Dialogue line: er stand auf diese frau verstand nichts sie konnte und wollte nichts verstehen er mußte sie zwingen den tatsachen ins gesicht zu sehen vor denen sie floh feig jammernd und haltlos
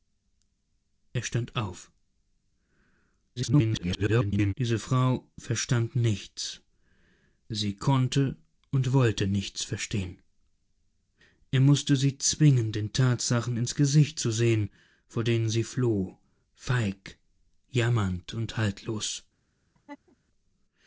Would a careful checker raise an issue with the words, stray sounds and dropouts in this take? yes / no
yes